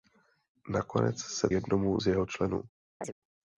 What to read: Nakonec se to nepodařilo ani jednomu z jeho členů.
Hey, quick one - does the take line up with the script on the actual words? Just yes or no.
no